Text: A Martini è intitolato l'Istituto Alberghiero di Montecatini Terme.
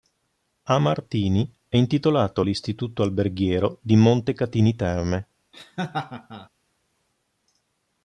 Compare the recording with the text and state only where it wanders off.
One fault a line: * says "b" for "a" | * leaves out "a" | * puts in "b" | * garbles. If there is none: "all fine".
all fine